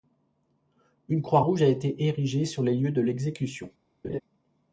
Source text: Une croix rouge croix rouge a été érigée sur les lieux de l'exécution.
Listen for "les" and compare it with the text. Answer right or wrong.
right